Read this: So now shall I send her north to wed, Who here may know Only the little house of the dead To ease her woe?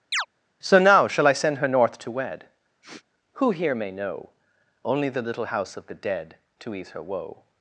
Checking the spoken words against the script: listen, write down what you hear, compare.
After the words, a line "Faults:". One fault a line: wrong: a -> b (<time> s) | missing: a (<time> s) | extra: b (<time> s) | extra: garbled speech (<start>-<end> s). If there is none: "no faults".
So now shall I send her north to wed, Who here may know Only the little house of the dead To ease her woe?
Faults:
no faults